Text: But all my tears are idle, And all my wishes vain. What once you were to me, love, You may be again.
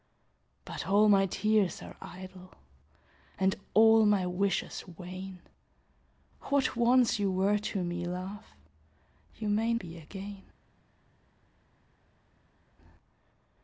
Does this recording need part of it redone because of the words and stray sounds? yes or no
no